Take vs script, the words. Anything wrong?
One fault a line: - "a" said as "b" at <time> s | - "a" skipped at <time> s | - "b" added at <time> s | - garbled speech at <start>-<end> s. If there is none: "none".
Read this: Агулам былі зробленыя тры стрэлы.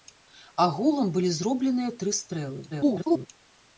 - garbled speech at 2.7-3.3 s